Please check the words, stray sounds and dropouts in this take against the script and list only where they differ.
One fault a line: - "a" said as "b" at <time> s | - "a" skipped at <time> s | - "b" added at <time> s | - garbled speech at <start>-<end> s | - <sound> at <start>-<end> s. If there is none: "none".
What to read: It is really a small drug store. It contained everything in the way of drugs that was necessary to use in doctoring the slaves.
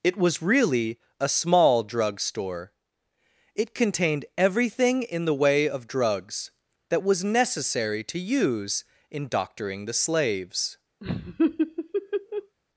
- "is" said as "was" at 0.2 s
- laugh at 11.0-12.6 s